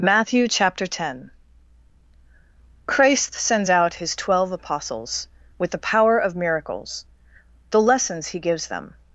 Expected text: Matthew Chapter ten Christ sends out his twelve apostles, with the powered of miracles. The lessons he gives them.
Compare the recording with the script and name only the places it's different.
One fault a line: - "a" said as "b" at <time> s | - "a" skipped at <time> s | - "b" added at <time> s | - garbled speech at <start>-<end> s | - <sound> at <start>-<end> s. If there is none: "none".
- "powered" said as "power" at 5.8 s